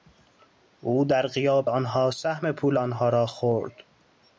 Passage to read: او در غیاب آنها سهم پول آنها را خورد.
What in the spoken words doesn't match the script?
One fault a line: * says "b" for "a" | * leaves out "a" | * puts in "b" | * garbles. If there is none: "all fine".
all fine